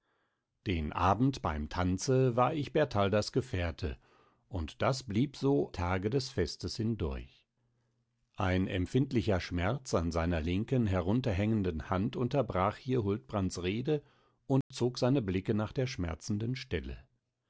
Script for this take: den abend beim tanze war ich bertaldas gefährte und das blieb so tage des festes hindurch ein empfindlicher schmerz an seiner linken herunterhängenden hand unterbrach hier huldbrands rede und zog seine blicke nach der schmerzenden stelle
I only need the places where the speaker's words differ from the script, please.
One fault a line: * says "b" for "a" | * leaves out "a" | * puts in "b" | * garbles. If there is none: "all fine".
all fine